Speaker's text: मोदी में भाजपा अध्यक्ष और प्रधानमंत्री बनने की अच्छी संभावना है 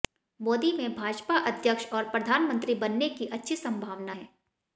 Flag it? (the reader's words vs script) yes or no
no